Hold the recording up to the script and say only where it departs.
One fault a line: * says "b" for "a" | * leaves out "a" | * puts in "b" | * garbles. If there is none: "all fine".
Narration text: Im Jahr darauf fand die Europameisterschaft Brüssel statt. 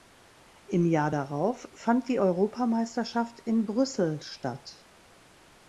* puts in "in"